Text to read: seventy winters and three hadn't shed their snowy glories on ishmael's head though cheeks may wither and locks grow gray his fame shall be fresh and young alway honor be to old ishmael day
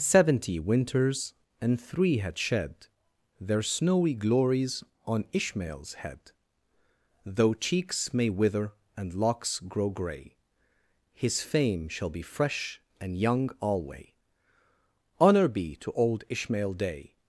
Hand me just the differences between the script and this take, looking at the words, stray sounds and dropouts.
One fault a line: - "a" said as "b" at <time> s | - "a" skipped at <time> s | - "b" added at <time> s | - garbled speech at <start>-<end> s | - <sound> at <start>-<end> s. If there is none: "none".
- "hadn't" said as "had" at 2.2 s